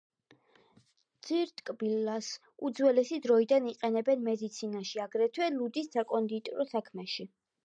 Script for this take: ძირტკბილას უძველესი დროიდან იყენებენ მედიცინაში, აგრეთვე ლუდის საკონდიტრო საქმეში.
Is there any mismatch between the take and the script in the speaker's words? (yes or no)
no